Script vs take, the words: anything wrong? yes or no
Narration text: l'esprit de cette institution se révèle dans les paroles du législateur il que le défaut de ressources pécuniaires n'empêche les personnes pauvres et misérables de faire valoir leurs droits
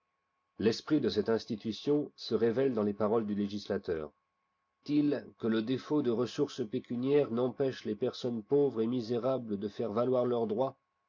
no